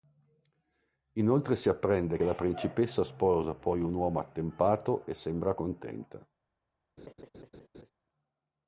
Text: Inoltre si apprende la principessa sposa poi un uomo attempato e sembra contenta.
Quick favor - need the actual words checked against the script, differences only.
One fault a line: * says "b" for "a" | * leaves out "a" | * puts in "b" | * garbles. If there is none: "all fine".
all fine